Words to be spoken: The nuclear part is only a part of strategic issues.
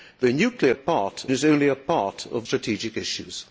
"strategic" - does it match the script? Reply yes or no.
yes